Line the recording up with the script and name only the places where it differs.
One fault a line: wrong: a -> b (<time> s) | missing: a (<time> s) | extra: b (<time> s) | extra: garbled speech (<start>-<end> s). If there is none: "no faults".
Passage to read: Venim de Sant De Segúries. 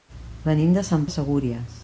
no faults